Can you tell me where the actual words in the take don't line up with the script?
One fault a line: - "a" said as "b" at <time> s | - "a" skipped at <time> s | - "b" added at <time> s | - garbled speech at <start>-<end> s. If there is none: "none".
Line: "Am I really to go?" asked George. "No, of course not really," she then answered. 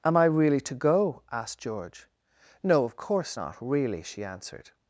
- "then" skipped at 4.2 s